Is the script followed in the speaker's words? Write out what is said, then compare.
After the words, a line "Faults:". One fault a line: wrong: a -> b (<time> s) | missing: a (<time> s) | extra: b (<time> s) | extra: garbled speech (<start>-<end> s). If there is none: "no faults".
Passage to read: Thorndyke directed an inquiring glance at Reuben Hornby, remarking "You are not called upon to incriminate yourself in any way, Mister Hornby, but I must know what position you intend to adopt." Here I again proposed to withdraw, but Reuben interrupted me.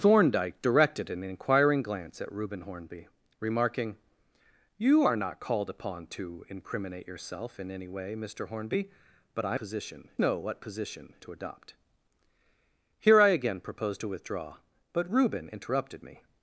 Thorndyke directed an inquiring glance at Reuben Hornby, remarking "You are not called upon to incriminate yourself in any way, Mister Hornby, but I position know what position to adopt." Here I again proposed to withdraw, but Reuben interrupted me.
Faults:
wrong: must -> position (9.6 s)
missing: you intend (11.1 s)